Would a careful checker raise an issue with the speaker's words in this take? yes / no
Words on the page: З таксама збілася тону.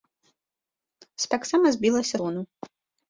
no